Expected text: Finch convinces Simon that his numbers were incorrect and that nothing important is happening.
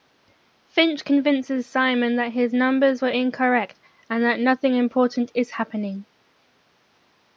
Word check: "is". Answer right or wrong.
right